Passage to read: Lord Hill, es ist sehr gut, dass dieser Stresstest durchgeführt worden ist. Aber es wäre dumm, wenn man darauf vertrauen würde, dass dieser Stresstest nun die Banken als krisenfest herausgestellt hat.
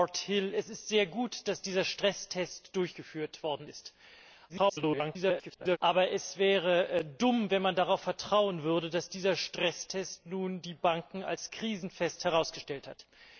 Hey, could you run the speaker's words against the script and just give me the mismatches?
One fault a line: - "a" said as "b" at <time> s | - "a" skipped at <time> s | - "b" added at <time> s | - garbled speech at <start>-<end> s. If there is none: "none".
- garbled speech at 4.5-5.8 s